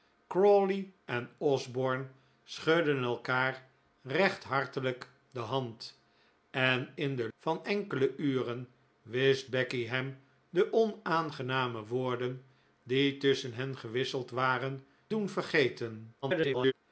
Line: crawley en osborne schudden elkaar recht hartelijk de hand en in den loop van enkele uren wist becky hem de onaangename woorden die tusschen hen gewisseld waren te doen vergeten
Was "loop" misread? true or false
true